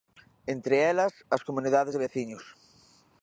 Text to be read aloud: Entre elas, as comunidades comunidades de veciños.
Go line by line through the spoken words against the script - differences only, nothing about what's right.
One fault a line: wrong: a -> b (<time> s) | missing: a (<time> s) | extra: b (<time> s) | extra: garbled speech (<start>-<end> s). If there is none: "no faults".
missing: comunidades (1.9 s)